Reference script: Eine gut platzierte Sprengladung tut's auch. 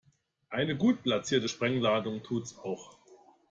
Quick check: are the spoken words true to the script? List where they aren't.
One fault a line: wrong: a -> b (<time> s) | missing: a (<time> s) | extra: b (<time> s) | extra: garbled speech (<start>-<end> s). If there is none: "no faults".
no faults